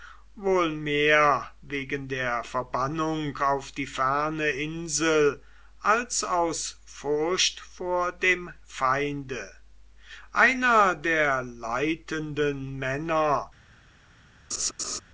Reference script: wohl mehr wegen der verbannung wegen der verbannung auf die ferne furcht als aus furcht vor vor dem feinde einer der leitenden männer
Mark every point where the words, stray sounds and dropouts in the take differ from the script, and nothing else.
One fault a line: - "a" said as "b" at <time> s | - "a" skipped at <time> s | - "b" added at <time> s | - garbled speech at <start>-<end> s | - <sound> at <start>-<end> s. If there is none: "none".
- "wegen der verbannung" skipped at 3.4 s
- "furcht" said as "insel" at 4.5 s
- "vor" skipped at 8.1 s
- laugh at 14.5-15.0 s